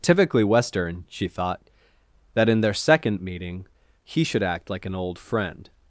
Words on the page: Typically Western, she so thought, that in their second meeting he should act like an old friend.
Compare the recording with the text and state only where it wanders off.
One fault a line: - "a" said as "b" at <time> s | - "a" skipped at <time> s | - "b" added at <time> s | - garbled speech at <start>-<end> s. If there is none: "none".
- "so" skipped at 1.3 s